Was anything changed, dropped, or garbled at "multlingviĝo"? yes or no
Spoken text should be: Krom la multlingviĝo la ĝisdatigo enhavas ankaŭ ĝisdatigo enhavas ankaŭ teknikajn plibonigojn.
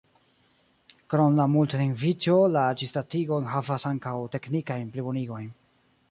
no